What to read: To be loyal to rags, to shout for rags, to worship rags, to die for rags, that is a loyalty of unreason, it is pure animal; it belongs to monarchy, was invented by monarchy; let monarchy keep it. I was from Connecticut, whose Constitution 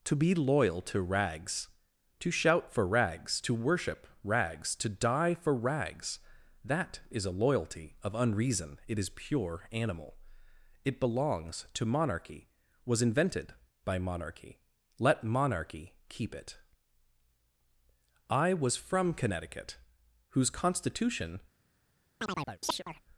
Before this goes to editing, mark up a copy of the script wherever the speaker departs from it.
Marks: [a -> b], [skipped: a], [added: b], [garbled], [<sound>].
To be loyal to rags, to shout for rags, to worship rags, to die for rags, that is a loyalty of unreason, it is pure animal; it belongs to monarchy, was invented by monarchy; let monarchy keep it. I was from Connecticut, whose Constitution [chirp]